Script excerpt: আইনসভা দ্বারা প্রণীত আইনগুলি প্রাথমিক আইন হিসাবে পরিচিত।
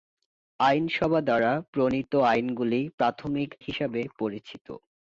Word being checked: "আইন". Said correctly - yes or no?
no